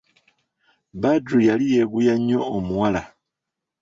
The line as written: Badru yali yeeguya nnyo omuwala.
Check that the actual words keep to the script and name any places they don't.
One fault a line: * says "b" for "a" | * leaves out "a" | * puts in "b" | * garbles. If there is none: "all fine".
all fine